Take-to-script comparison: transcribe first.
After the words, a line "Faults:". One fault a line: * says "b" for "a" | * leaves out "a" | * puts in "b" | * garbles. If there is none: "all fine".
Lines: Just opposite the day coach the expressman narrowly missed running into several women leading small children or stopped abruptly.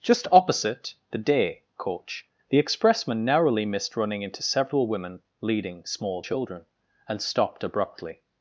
Just opposite the day coach the expressman narrowly missed running into several women leading small children and stopped abruptly.
Faults:
* says "and" for "or"